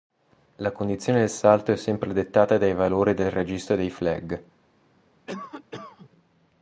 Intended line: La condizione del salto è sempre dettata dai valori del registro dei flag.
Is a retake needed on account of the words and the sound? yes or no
yes